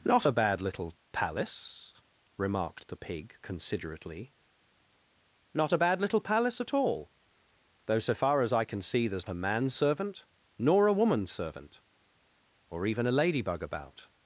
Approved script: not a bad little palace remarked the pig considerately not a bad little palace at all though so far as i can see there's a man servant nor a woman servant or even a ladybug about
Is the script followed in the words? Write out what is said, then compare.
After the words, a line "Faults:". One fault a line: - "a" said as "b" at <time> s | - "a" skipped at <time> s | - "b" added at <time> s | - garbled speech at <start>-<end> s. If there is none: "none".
not a bad little palace remarked the pig considerately not a bad little palace at all though so far as i can see there's a man servant nor a woman servant or even a ladybug about
Faults:
none